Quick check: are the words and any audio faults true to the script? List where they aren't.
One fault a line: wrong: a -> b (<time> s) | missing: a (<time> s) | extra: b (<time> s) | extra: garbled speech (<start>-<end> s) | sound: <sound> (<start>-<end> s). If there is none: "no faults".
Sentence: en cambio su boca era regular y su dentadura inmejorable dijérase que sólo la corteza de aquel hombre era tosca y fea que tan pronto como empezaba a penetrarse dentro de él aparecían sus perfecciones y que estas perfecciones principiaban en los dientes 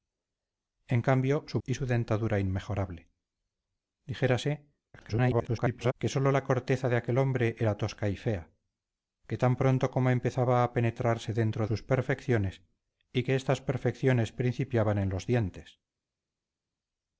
missing: boca era regular (1.6 s)
extra: garbled speech (4.9-5.9 s)
missing: de él aparecían (11.7 s)